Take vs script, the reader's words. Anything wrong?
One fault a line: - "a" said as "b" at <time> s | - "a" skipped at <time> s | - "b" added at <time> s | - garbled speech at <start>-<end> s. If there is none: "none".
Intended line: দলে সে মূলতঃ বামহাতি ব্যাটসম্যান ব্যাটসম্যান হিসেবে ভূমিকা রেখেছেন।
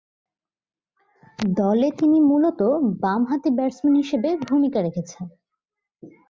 - "সে" said as "তিনি" at 2.0 s
- "ব্যাটসম্যান" skipped at 4.0 s